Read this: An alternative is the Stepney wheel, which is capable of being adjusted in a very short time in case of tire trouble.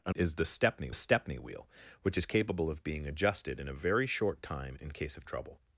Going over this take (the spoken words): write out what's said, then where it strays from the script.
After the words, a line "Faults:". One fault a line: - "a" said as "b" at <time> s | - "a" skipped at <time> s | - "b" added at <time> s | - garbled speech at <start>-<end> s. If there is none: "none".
An is the Stepney Stepney wheel, which is capable of being adjusted in a very short time in case of trouble.
Faults:
- "alternative" skipped at 0.1 s
- "Stepney" added at 0.9 s
- "tire" skipped at 5.2 s